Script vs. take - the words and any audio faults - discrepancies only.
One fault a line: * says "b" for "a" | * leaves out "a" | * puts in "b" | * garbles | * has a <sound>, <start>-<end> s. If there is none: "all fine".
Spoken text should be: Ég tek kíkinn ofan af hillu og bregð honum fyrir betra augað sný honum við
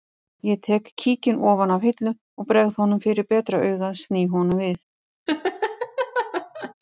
* has a laugh, 5.3-6.7 s